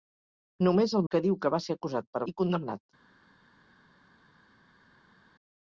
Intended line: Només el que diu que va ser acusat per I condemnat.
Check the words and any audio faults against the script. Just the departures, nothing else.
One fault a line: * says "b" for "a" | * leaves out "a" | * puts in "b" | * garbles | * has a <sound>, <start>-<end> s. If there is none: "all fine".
all fine